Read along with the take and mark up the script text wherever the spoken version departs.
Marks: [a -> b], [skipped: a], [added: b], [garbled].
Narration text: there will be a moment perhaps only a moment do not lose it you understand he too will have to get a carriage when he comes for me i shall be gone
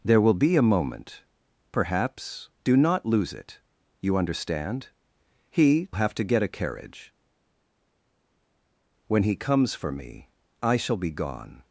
there will be a moment perhaps [skipped: only a moment] do not lose it you understand he [skipped: too will] have to get a carriage when he comes for me i shall be gone